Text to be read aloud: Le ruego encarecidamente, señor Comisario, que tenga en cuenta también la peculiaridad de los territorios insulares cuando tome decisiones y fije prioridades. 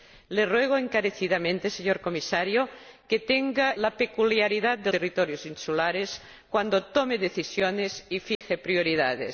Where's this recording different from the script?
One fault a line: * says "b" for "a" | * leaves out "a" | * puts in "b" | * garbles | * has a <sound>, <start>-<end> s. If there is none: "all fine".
* leaves out "en cuenta también"
* leaves out "los"
* has a dropout, 8.4-8.4 s